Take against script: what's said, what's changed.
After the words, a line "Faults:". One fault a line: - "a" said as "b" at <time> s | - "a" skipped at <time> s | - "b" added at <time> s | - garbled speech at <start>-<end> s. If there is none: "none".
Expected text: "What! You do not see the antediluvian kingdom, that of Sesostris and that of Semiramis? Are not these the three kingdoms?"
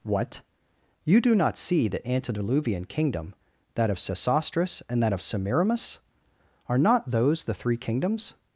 "What! You do not see the antediluvian kingdom, that of Sesostris and that of Semiramis? Are not those the three kingdoms?"
Faults:
- "these" said as "those" at 7.1 s